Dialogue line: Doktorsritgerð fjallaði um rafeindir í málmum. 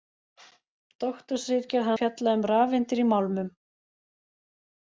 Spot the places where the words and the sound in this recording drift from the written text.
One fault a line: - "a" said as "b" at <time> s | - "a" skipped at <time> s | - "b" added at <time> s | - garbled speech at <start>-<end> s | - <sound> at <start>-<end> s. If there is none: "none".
none